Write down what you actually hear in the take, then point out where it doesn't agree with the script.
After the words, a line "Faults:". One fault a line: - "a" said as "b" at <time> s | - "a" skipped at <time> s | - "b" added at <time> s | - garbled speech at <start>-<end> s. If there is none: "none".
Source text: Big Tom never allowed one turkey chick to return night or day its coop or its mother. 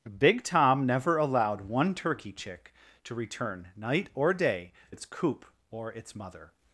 Big Tom never allowed one turkey chick to return night or day its coop or its mother.
Faults:
none